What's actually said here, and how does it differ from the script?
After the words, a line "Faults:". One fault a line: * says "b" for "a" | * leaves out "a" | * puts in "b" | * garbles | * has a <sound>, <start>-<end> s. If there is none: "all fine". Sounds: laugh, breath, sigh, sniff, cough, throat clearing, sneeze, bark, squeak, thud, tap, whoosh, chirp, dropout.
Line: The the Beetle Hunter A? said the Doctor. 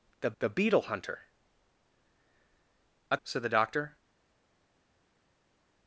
The the Beetle Hunter A? said the Doctor.
Faults:
all fine